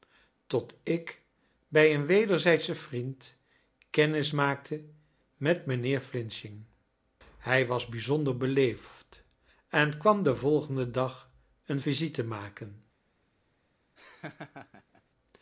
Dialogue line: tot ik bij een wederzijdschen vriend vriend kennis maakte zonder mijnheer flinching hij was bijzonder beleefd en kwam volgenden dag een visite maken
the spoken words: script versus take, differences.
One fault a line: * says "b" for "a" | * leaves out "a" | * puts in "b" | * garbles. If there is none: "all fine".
* leaves out "vriend"
* says "met" for "zonder"
* puts in "den"